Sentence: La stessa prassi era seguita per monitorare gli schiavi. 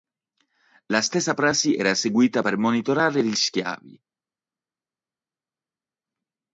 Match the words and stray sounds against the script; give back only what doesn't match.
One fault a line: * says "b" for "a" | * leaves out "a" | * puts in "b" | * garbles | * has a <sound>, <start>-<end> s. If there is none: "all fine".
all fine